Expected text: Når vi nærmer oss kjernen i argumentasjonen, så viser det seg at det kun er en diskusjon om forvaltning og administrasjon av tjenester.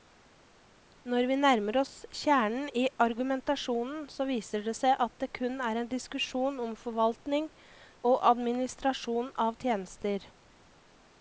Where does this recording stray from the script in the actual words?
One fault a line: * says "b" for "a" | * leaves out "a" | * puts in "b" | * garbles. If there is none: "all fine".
all fine